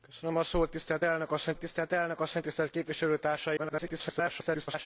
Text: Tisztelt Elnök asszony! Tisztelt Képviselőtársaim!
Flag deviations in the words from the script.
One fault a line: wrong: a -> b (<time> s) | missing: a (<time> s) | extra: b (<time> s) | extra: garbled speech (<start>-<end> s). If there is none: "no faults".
extra: Elnök asszony Tisztelt (1.9 s)
extra: garbled speech (3.6-4.9 s)